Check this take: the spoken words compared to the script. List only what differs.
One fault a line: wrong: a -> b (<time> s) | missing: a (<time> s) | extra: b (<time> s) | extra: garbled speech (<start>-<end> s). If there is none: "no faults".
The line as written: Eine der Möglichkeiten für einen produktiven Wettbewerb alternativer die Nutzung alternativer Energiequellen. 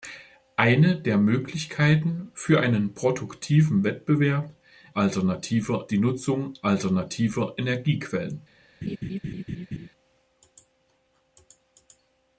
no faults